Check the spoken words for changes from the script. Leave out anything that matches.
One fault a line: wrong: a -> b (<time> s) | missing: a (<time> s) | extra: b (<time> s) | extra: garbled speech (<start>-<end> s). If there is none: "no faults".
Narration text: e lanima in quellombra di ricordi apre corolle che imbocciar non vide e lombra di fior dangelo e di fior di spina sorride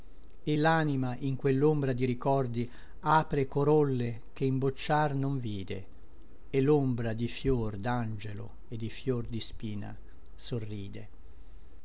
no faults